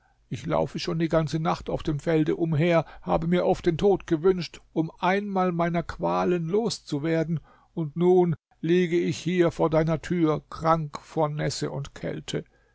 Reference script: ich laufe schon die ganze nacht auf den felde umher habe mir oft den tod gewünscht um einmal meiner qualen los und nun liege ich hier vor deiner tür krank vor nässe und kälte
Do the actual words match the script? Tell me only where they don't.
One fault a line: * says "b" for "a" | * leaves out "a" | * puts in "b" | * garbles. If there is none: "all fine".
* says "dem" for "den"
* puts in "zu werden"